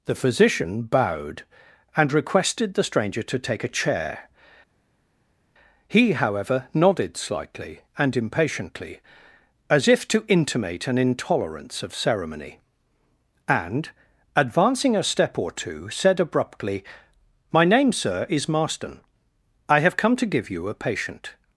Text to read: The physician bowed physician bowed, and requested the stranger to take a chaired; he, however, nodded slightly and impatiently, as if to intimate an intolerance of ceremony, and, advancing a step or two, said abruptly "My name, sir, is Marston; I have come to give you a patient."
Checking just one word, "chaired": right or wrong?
wrong